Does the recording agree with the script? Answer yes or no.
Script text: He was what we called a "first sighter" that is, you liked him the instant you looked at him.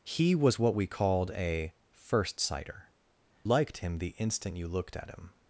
no